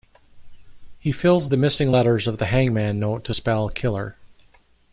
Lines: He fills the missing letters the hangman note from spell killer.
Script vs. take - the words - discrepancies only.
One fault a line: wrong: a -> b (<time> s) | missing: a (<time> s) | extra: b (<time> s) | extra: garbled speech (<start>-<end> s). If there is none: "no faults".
extra: of (2.3 s)
wrong: from -> to (3.2 s)